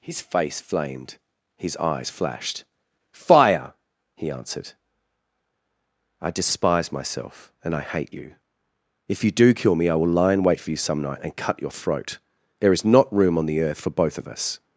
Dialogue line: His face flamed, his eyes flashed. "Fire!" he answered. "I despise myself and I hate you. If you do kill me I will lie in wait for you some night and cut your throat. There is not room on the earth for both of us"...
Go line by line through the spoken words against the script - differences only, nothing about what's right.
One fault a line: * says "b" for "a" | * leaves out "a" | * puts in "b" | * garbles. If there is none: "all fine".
all fine